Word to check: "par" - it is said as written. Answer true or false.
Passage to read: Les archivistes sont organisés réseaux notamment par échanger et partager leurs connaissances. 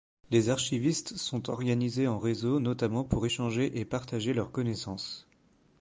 false